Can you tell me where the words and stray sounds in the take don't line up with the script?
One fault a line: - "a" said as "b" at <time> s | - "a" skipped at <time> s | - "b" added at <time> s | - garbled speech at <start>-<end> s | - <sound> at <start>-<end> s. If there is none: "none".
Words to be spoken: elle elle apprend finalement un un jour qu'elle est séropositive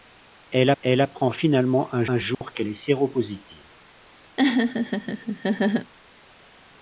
- dropout at 2.3-2.4 s
- laugh at 4.4-5.9 s